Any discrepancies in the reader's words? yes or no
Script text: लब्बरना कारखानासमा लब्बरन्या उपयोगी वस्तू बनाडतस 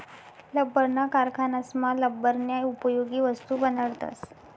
no